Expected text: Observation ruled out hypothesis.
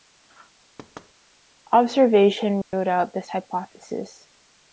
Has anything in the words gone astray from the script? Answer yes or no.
yes